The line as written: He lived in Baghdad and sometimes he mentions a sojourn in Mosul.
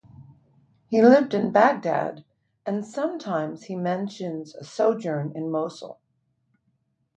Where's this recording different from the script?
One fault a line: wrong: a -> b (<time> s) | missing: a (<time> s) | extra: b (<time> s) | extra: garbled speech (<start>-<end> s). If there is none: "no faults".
no faults